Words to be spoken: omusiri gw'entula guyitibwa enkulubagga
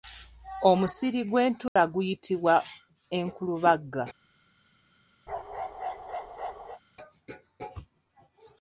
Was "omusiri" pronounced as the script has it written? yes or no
yes